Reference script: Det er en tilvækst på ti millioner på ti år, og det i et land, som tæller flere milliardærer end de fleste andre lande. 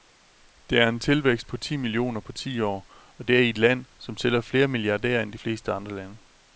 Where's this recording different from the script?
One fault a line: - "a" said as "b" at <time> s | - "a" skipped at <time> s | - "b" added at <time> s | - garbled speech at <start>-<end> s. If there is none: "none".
none